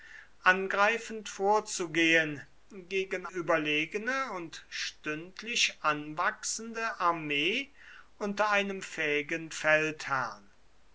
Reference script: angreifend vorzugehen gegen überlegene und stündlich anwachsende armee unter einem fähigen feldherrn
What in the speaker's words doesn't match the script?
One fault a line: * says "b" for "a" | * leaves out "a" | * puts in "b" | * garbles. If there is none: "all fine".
all fine